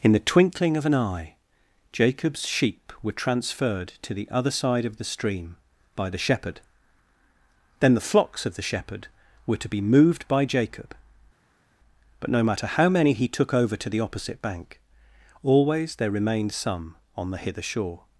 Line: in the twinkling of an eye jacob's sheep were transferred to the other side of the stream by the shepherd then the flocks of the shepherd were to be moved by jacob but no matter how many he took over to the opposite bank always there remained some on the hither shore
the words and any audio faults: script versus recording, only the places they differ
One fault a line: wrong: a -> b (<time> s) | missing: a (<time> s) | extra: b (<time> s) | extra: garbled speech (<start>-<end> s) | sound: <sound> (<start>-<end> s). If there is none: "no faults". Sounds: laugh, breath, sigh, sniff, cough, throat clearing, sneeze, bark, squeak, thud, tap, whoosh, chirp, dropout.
no faults